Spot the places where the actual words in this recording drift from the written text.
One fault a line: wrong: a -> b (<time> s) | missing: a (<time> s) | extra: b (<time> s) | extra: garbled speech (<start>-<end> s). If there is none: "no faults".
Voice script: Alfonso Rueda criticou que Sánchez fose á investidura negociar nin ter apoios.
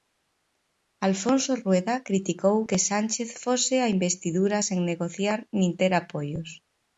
extra: sen (4.7 s)